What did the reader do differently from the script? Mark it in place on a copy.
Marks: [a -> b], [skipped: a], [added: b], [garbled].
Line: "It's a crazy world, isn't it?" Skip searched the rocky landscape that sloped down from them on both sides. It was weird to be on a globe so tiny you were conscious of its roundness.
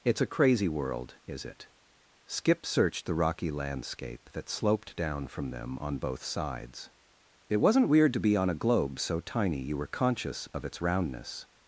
"It's a crazy world, [isn't -> is] it?" Skip searched the rocky landscape that sloped down from them on both sides. It [was -> wasn't] weird to be on a globe so tiny you were conscious of its roundness.